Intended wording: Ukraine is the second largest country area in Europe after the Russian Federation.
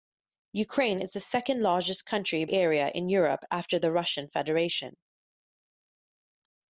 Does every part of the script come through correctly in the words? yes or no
yes